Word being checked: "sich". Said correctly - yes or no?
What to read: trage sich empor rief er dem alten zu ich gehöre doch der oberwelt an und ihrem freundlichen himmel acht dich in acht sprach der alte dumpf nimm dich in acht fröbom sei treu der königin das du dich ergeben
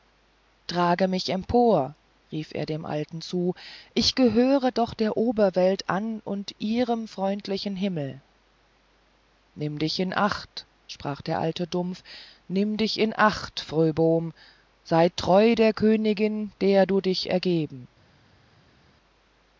no